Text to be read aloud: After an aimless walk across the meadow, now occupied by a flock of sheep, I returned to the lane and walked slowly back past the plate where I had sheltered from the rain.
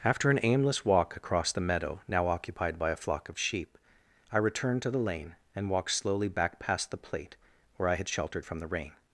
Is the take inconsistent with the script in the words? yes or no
no